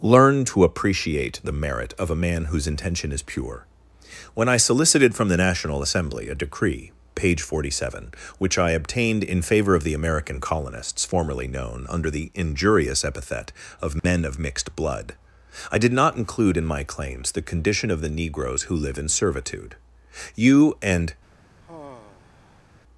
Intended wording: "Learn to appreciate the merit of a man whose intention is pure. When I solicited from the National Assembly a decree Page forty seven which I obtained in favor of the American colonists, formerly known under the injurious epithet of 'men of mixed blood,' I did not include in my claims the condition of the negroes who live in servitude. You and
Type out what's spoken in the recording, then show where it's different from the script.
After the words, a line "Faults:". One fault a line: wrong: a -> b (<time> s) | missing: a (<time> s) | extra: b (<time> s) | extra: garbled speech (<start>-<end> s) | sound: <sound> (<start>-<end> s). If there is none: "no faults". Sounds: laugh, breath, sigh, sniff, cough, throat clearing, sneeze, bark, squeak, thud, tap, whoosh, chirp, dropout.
"Learn to appreciate the merit of a man whose intention is pure. When I solicited from the National Assembly a decree Page forty seven which I obtained in favor of the American colonists, formerly known under the injurious epithet of 'men of mixed blood,' I did not include in my claims the condition of the negroes who live in servitude. You and
Faults:
sound: dropout (14.0-14.0 s)
sound: sigh (21.6-22.6 s)